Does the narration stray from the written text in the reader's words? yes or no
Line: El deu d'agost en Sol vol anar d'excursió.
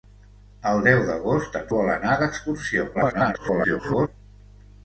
yes